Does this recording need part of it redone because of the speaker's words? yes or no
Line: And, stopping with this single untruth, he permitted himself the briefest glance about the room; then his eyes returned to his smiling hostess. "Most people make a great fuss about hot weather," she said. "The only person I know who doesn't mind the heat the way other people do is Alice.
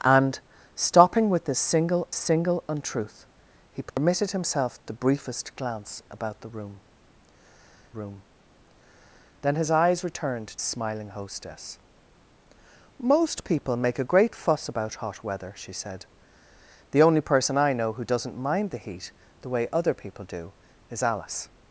yes